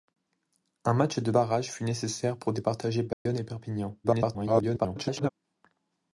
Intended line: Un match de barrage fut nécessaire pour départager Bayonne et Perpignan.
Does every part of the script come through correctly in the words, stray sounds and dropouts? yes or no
no